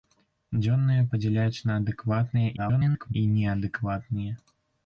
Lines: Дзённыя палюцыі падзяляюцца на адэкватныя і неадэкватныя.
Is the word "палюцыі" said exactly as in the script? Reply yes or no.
no